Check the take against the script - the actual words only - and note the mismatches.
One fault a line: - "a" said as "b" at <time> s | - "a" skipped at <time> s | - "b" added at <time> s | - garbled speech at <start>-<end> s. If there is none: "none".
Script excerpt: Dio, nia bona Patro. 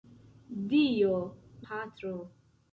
- "nia bona" skipped at 1.2 s